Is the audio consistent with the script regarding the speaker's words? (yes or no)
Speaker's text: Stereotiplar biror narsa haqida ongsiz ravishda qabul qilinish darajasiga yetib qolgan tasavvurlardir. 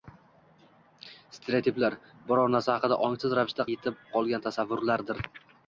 no